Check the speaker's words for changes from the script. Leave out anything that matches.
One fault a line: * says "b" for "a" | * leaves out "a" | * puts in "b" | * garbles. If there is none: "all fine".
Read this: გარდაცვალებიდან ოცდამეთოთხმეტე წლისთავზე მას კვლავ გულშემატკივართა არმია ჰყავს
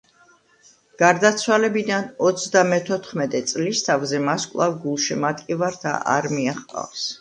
all fine